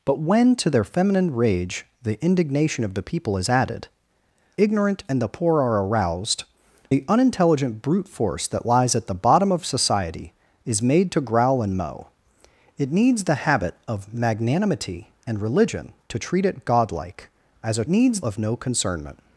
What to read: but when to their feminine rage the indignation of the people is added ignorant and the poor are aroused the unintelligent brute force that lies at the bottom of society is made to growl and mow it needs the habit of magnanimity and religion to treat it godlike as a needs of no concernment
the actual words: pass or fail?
pass